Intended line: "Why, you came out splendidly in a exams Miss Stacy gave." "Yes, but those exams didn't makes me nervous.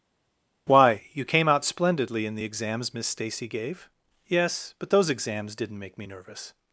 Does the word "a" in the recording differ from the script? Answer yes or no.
yes